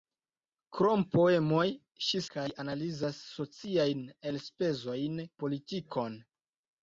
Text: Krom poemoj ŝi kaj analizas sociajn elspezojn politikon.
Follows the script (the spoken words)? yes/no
yes